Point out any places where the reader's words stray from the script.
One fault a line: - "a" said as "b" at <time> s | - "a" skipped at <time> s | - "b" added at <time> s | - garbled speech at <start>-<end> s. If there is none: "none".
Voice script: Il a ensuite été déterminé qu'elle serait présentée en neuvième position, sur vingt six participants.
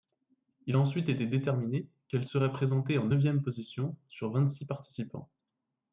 none